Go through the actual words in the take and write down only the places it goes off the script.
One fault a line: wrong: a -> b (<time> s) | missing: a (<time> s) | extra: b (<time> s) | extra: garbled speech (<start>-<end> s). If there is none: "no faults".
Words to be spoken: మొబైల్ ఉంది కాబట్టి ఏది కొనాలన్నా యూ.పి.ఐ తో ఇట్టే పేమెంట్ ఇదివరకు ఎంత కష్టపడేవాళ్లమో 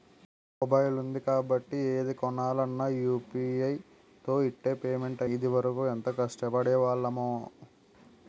no faults